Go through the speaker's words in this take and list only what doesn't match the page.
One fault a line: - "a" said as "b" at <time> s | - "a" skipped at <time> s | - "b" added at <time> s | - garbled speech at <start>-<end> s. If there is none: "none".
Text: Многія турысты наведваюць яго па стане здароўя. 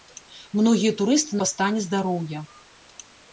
- "наведваюць яго" skipped at 1.3 s